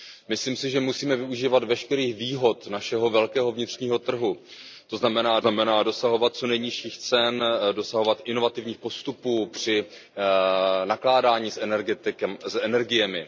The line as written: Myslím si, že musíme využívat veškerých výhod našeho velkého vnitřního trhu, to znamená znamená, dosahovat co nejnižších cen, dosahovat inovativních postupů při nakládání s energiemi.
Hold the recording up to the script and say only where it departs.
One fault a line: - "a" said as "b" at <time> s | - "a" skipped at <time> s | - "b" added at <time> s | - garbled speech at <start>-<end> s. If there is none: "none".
none